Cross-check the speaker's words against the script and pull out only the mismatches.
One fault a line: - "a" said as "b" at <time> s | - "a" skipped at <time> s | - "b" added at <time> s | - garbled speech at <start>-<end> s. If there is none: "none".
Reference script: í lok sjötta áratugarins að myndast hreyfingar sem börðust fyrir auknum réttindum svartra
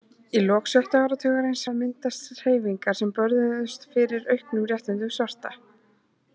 none